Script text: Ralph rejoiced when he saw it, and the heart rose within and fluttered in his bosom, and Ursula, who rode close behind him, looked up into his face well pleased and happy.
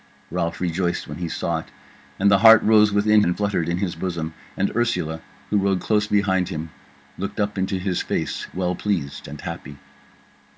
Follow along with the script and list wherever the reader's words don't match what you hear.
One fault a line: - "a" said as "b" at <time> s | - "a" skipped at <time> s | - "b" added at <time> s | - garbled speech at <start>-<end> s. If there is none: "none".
none